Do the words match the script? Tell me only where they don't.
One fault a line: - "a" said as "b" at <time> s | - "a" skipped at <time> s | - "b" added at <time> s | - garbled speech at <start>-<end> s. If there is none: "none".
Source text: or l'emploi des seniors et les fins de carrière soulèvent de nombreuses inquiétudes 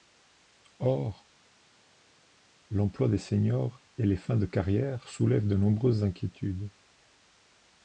none